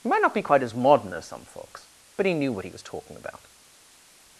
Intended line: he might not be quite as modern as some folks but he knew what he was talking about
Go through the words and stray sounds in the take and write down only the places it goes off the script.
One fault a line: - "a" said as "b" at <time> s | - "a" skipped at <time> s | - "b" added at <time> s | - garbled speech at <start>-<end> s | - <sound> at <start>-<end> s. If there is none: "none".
none